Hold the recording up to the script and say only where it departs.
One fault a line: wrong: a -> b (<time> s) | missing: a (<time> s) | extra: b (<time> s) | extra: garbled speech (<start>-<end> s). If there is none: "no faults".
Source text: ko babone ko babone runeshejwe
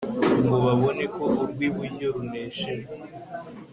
wrong: ko -> ngo (0.5 s)
wrong: babone -> urw'iburyo (1.4 s)